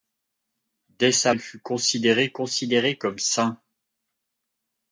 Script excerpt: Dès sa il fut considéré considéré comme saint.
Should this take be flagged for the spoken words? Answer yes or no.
no